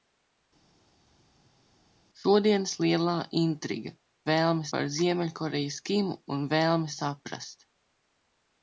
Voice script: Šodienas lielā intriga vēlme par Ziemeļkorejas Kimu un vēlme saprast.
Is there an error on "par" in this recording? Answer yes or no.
no